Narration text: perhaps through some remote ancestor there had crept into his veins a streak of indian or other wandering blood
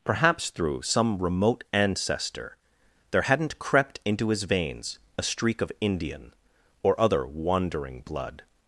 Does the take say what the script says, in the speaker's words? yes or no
no